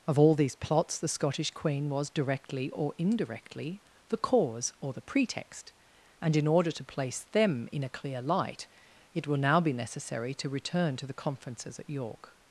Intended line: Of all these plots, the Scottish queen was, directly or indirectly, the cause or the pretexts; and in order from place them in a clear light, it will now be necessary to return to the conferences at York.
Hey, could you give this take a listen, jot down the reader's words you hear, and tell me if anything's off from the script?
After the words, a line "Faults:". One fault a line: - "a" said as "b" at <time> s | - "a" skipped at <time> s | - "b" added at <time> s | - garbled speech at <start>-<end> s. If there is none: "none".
Of all these plots, the Scottish queen was, directly or indirectly, the cause or the pretext; and in order to place them in a clear light, it will now be necessary to return to the conferences at York.
Faults:
- "pretexts" said as "pretext" at 5.0 s
- "from" said as "to" at 6.7 s